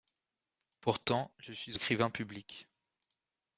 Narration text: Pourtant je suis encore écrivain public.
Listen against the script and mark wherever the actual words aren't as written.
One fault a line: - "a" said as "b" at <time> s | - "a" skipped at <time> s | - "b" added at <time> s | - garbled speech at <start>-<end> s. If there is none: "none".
- "encore" skipped at 1.8 s